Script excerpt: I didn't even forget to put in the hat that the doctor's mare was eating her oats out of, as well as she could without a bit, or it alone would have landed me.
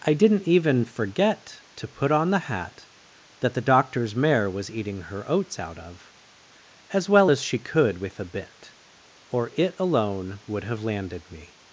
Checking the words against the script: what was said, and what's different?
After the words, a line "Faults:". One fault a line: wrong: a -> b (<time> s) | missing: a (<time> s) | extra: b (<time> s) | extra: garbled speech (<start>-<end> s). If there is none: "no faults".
I didn't even forget to put on the hat that the doctor's mare was eating her oats out of, as well as she could with a bit, or it alone would have landed me.
Faults:
wrong: in -> on (2.1 s)
wrong: without -> with (8.0 s)